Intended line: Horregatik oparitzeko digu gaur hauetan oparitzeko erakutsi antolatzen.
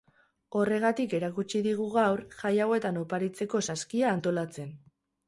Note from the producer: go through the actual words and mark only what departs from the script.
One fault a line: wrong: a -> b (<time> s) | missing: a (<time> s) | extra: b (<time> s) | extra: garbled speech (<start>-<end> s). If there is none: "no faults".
wrong: oparitzeko -> erakutsi (1.2 s)
extra: jai (2.4 s)
wrong: erakutsi -> saskia (3.7 s)